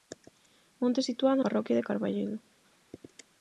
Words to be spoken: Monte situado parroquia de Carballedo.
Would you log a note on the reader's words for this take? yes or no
no